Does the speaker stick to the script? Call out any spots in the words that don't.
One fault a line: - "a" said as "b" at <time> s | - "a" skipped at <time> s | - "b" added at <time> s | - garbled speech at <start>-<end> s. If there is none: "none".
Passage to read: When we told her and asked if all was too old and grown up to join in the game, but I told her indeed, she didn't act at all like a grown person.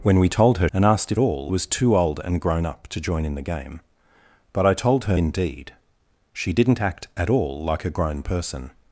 none